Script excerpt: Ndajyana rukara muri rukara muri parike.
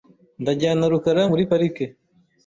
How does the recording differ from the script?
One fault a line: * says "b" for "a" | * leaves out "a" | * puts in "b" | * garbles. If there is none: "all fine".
* leaves out "rukara muri"